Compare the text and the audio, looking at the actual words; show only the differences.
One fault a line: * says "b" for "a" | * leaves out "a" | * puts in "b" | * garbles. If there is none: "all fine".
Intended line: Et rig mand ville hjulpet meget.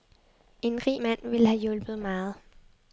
* says "En" for "Et"
* puts in "have"